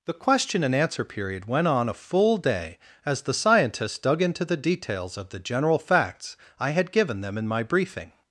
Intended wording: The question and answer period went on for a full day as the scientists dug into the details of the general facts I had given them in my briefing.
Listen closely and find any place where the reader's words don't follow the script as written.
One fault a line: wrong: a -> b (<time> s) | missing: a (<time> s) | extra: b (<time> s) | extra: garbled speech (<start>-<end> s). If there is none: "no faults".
missing: for (1.9 s)